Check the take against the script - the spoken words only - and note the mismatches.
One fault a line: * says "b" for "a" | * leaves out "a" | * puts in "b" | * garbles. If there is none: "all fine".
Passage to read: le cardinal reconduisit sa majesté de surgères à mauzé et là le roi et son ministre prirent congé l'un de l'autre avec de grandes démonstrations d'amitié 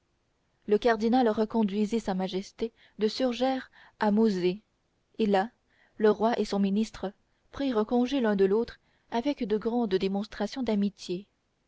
all fine